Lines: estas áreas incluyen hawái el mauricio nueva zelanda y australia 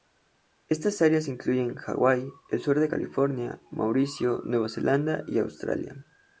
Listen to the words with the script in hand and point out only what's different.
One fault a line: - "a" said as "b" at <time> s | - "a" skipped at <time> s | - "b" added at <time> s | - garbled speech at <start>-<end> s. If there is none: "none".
- "sur de california" added at 2.6 s